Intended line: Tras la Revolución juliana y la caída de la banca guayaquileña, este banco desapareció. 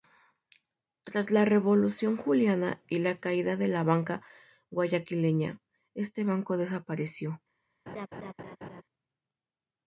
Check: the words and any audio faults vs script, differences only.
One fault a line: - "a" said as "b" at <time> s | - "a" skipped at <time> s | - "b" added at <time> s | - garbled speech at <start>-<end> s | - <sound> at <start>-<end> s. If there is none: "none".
- laugh at 7.9-8.8 s